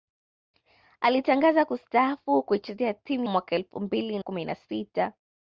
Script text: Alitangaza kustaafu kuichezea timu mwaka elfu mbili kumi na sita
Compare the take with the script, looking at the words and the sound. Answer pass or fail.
pass